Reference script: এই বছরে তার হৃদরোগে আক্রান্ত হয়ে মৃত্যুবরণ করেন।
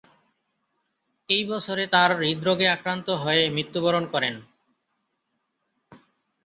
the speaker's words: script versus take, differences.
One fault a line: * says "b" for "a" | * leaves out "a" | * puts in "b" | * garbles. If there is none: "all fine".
all fine